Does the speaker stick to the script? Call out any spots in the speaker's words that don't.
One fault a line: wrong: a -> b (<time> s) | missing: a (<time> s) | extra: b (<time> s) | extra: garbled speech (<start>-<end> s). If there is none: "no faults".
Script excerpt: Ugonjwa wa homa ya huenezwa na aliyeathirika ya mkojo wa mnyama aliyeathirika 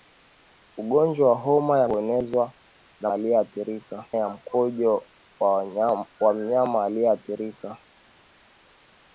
no faults